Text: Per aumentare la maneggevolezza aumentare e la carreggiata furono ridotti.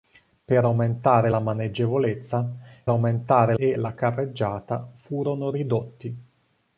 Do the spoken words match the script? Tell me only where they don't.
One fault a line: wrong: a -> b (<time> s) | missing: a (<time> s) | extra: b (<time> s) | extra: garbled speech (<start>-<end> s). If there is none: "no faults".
no faults